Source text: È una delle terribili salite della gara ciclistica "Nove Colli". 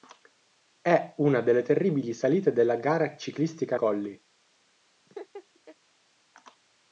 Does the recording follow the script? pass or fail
fail